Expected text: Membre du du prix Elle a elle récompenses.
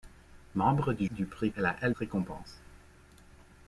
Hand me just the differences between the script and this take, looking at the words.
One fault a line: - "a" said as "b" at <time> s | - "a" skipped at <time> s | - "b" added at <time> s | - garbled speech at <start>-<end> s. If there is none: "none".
none